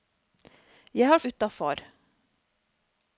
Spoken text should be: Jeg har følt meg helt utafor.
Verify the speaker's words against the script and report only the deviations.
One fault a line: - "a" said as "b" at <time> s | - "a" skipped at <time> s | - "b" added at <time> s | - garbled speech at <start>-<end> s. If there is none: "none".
- "følt meg helt" skipped at 1.2 s